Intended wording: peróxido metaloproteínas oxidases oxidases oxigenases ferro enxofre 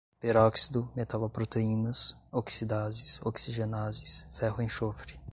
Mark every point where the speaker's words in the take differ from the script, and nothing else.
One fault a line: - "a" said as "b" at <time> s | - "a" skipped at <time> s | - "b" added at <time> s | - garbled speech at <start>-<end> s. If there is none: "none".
- "oxidases" skipped at 3.2 s